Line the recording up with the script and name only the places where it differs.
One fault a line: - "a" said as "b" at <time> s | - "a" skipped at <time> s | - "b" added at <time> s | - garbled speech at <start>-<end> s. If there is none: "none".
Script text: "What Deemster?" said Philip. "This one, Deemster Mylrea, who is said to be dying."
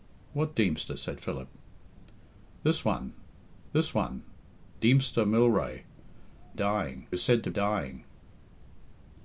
- "this one" added at 3.7 s
- "who" said as "dying" at 6.5 s
- "be" skipped at 7.5 s